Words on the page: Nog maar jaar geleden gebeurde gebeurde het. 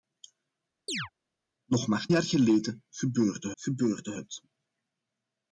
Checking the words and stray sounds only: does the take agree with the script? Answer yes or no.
no